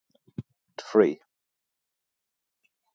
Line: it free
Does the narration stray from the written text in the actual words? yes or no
no